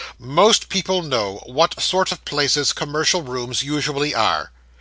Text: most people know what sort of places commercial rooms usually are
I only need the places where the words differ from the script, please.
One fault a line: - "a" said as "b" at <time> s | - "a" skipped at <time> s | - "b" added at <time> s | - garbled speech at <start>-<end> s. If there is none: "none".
none